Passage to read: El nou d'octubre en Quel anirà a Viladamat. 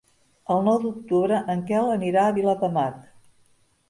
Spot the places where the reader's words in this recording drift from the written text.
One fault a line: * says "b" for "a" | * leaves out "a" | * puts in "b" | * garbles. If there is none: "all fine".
all fine